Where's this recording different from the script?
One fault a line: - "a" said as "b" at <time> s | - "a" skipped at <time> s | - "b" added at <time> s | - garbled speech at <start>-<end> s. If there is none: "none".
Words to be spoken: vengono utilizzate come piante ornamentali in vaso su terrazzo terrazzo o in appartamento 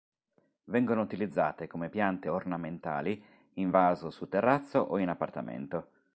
- "terrazzo" skipped at 4.8 s